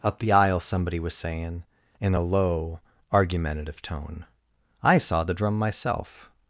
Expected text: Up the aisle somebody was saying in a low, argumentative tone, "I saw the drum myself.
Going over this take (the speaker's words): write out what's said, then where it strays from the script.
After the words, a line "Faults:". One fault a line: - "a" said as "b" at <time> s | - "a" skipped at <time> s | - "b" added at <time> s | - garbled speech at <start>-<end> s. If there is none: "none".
Up the aisle somebody was saying in a low, argumentative tone, "I saw the drum myself.
Faults:
none